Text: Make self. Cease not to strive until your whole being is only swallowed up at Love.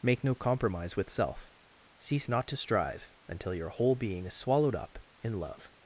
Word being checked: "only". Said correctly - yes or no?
no